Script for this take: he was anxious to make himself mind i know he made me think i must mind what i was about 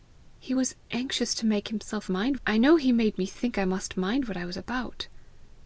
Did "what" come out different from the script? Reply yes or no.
no